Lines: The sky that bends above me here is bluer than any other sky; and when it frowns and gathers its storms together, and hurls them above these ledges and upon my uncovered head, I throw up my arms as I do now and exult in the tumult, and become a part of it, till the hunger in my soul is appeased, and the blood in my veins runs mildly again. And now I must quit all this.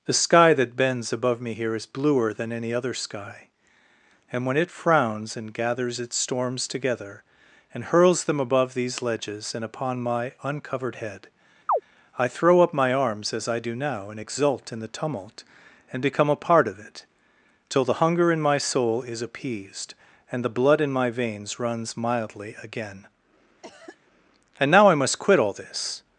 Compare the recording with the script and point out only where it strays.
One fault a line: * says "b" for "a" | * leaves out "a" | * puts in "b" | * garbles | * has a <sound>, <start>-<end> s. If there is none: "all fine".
* has a chirp, 11.7-11.8 s
* has a cough, 23.6-24.0 s